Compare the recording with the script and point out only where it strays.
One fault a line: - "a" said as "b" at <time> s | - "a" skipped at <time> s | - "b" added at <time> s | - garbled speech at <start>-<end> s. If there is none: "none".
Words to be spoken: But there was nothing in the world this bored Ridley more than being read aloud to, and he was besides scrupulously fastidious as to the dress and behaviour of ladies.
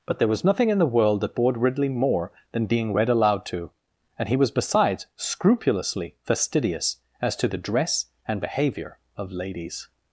- "this" said as "that" at 1.2 s